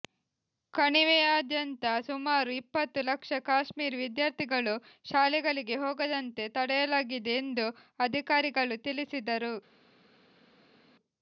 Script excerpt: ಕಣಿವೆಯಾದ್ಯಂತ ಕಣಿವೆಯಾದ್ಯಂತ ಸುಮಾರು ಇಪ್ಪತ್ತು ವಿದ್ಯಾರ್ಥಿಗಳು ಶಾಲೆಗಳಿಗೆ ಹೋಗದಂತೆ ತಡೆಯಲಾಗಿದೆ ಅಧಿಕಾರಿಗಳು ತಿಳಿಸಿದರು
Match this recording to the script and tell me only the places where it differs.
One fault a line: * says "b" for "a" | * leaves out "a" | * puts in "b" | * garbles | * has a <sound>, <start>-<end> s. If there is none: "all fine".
* leaves out "ಕಣಿವೆಯಾದ್ಯಂತ"
* puts in "ಲಕ್ಷ ಕಾಶ್ಮೀರಿ"
* puts in "ಎಂದು"